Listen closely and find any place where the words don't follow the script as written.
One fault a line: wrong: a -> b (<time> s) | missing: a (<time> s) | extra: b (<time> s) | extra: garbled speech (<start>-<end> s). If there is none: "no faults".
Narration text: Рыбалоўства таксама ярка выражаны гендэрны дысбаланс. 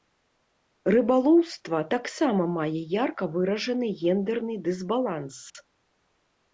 extra: мае (2.6 s)